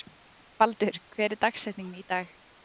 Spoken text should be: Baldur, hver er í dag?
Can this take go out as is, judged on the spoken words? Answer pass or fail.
fail